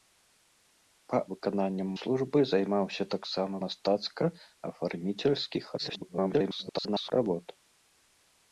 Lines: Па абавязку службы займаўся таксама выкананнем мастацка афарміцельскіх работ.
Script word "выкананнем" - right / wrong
wrong